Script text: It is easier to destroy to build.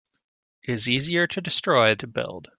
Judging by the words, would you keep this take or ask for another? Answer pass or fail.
pass